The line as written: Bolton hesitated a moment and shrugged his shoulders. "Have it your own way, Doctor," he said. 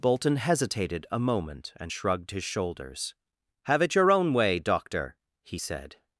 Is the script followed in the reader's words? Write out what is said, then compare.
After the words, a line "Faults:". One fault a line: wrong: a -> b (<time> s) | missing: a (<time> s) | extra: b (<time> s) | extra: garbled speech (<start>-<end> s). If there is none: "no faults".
Bolton hesitated a moment and shrugged his shoulders. "Have it your own way, Doctor," he said.
Faults:
no faults